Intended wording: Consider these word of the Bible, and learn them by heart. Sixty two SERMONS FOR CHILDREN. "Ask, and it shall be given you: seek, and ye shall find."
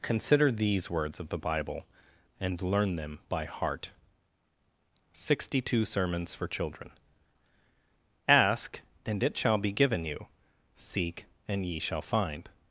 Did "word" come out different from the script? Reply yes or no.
yes